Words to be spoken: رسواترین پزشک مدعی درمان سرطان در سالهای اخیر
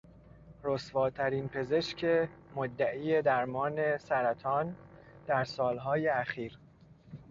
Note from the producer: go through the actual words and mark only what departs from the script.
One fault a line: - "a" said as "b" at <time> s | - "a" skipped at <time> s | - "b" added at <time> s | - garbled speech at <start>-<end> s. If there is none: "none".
none